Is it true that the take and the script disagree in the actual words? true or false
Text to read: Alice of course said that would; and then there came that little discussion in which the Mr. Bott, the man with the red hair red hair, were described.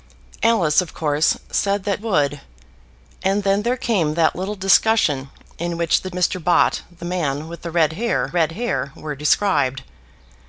false